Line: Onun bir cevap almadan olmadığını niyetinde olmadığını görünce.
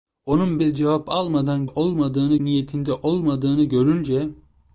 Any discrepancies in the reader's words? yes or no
no